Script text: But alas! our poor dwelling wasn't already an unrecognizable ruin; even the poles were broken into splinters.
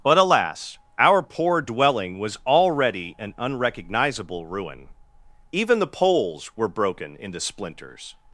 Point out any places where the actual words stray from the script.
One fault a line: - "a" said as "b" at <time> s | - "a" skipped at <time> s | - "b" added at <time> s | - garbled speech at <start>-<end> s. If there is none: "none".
- "wasn't" said as "was" at 2.2 s